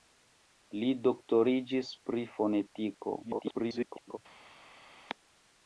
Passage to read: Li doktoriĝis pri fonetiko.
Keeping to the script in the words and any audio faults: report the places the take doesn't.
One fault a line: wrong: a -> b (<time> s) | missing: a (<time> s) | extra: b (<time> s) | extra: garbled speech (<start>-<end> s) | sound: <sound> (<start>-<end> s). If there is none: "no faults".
extra: garbled speech (3.2-4.2 s)